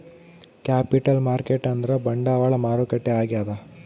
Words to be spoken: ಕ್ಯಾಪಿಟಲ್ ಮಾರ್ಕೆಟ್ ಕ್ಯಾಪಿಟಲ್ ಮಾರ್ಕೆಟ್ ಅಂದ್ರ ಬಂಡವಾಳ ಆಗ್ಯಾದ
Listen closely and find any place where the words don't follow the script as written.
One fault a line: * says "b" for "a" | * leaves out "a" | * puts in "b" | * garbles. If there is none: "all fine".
* leaves out "ಕ್ಯಾಪಿಟಲ್ ಮಾರ್ಕೆಟ್"
* puts in "ಮಾರುಕಟ್ಟೆ"